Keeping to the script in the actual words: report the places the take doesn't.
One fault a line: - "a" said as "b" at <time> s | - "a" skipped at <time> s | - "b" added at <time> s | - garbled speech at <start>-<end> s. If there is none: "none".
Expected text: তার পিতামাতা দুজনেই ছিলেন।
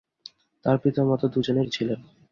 none